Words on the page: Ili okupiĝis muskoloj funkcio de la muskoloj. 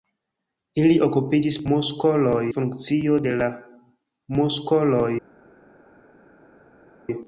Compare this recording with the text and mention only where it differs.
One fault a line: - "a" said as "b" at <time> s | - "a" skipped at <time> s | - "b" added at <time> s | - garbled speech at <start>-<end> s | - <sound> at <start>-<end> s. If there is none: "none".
none